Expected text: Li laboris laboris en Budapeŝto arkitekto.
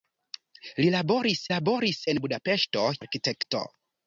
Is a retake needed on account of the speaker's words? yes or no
no